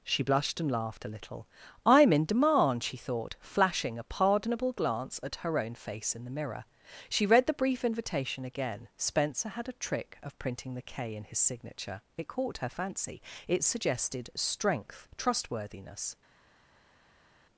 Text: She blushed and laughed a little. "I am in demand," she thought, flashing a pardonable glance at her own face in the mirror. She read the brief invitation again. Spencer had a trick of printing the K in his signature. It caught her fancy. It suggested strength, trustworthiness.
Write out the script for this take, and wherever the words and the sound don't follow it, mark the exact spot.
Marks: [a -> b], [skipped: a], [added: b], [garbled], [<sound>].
She blushed and laughed a little. "I am in demand," she thought, flashing a pardonable glance at her own face in the mirror. She read the brief invitation again. Spencer had a trick of printing the K in his signature. It caught her fancy. It suggested strength, trustworthiness.